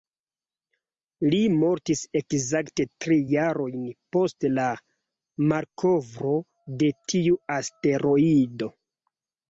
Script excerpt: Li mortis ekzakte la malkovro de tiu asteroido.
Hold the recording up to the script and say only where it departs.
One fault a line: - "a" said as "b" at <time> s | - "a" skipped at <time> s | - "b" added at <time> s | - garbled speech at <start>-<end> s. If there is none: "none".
- "tri jarojn post" added at 3.0 s